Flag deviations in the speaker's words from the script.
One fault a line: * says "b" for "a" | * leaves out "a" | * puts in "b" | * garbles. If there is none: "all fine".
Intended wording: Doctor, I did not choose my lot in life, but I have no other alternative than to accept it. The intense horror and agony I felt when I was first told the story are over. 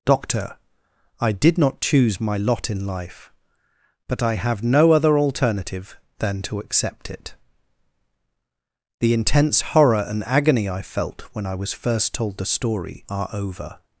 all fine